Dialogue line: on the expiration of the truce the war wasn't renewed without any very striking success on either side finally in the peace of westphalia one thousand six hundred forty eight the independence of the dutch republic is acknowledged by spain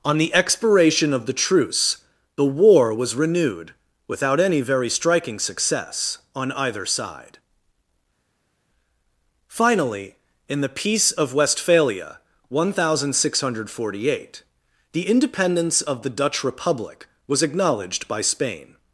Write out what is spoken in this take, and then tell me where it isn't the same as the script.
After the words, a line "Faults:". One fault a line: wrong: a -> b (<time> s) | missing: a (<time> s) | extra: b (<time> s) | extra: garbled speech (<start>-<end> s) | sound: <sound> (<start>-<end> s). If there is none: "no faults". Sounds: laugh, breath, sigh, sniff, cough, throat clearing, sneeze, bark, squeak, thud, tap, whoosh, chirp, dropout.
on the expiration of the truce the war was renewed without any very striking success on either side finally in the peace of westphalia one thousand six hundred forty eight the independence of the dutch republic was acknowledged by spain
Faults:
wrong: wasn't -> was (2.9 s)
wrong: is -> was (17.3 s)